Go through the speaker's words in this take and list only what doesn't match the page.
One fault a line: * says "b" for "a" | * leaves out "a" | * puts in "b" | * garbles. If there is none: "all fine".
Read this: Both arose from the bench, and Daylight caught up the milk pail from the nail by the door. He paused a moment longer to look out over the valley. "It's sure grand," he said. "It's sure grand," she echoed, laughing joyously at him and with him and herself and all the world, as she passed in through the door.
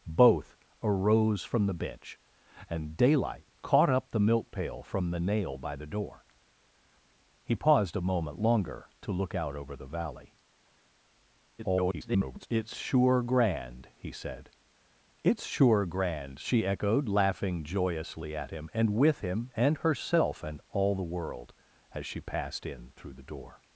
* garbles